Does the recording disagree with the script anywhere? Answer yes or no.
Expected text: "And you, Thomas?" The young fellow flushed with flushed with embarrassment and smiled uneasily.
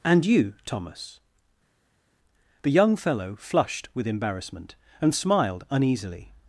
yes